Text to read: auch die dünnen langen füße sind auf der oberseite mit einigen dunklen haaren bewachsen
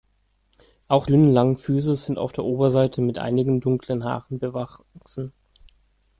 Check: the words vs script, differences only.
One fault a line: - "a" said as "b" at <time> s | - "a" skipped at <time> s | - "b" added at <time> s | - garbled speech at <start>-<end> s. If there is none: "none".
- "die" skipped at 1.1 s